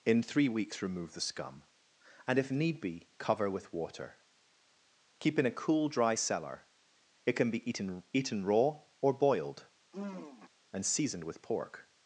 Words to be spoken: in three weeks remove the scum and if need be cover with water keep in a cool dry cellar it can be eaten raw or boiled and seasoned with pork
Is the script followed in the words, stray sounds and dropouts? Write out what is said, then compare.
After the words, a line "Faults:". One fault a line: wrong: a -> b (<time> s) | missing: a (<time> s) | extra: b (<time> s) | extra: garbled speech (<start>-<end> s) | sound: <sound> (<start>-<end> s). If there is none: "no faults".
in three weeks remove the scum and if need be cover with water keep in a cool dry cellar it can be eaten eaten raw or boiled and seasoned with pork
Faults:
extra: eaten (8.1 s)
sound: sigh (9.9-10.5 s)